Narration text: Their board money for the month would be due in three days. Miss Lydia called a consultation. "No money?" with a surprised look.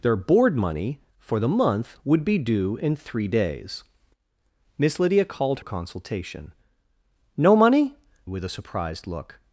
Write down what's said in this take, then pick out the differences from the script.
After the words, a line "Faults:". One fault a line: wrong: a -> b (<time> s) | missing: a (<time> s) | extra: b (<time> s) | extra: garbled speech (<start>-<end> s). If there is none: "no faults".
Their board money for the month would be due in three days. Miss Lydia called a consultation. "No money?" with a surprised look.
Faults:
no faults